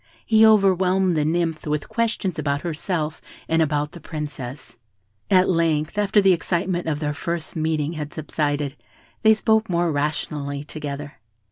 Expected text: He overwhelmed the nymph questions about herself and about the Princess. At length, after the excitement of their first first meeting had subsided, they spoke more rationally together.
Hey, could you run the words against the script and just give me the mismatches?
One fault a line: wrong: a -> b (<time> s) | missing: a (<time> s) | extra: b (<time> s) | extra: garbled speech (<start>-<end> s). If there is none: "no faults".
extra: with (1.7 s)
missing: first (7.5 s)